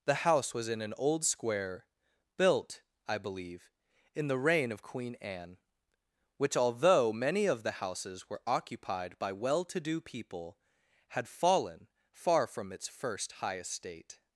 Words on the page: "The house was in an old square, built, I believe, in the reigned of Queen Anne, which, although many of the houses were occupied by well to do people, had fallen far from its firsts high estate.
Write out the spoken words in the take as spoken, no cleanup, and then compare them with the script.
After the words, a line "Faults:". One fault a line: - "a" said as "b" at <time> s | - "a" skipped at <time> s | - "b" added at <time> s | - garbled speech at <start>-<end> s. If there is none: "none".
"The house was in an old square, built, I believe, in the reign of Queen Anne, which, although many of the houses were occupied by well to do people, had fallen far from its first high estate.
Faults:
- "reigned" said as "reign" at 4.4 s
- "firsts" said as "first" at 12.9 s